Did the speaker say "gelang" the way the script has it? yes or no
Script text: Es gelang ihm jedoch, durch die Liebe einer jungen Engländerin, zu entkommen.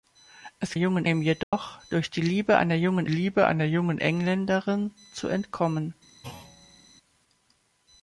no